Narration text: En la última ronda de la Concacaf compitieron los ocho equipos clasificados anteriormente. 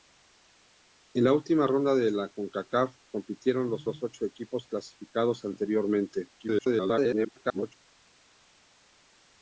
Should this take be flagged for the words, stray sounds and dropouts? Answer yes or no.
yes